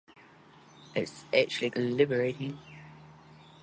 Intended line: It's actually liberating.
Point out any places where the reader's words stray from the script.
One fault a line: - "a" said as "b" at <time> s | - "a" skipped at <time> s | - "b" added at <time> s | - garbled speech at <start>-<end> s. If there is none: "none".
none